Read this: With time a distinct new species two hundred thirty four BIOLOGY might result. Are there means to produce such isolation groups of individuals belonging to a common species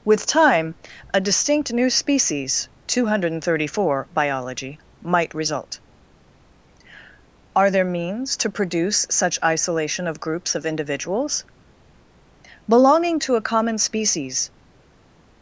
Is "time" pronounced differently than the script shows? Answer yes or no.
no